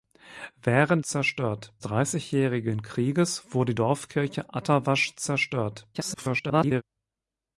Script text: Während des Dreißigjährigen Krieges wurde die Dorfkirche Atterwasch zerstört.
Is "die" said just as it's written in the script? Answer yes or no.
no